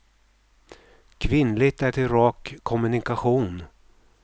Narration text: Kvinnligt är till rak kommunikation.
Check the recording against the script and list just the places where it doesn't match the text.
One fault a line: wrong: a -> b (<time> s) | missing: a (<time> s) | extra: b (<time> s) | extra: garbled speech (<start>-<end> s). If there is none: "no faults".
no faults